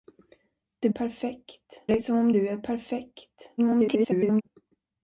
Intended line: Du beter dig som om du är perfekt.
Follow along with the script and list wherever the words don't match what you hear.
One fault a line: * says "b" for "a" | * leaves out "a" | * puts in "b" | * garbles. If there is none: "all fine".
* says "perfekt" for "beter"
* garbles